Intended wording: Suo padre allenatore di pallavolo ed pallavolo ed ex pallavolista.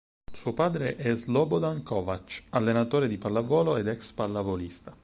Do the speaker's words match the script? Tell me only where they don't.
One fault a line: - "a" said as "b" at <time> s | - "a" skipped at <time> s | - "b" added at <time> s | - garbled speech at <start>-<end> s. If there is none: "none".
- "è Slobodan Kovač" added at 0.9 s
- "pallavolo ed" skipped at 3.9 s